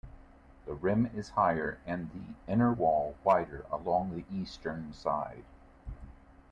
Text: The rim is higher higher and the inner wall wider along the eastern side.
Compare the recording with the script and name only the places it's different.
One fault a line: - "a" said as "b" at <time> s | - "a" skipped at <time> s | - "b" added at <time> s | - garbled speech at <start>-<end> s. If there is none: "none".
- "higher" skipped at 1.8 s